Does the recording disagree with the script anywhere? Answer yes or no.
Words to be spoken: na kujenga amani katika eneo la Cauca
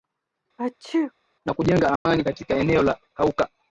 no